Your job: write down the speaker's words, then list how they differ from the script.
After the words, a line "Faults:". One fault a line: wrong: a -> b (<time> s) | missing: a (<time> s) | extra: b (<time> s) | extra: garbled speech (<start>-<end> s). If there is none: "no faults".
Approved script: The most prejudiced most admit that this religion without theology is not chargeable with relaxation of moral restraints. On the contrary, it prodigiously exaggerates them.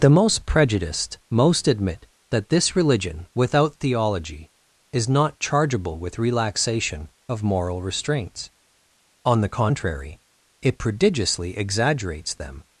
The most prejudiced most admit that this religion without theology is not chargeable with relaxation of moral restraints. On the contrary, it prodigiously exaggerates them.
Faults:
no faults